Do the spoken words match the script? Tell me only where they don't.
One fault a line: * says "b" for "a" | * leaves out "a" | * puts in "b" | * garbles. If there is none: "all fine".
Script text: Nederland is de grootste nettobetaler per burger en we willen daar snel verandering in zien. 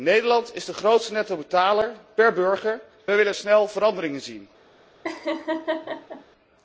* leaves out "en"
* leaves out "daar"